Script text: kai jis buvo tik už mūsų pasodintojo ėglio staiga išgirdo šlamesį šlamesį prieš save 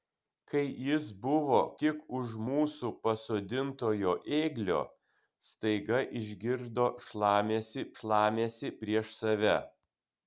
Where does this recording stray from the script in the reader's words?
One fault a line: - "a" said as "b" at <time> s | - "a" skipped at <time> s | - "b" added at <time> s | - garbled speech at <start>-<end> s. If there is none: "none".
none